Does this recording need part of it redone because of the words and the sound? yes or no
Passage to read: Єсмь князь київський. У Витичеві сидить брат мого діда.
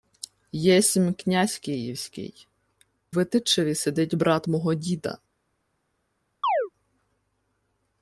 yes